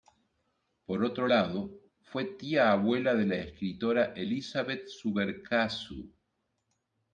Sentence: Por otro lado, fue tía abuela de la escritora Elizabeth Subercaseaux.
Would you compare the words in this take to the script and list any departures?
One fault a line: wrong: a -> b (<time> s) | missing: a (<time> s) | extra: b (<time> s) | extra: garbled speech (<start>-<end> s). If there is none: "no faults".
no faults